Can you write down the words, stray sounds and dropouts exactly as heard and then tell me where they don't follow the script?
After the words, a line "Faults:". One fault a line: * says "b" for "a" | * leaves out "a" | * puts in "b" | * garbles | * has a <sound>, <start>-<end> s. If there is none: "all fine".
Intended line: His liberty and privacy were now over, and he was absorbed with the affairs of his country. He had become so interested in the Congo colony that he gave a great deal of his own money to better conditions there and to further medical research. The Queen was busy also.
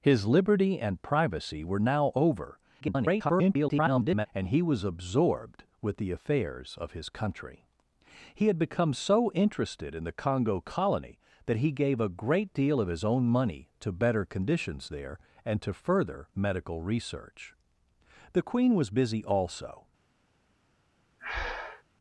His liberty and privacy were now over, [garbled] and he was absorbed with the affairs of his country. He had become so interested in the Congo colony that he gave a great deal of his own money to better conditions there and to further medical research. The Queen was busy also.
Faults:
* garbles
* has a breath, 21.2-21.8 s